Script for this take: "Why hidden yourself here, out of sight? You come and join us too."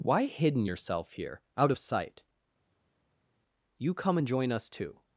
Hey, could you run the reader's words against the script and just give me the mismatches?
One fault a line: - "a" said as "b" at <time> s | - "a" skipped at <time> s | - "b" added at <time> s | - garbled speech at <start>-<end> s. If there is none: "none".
none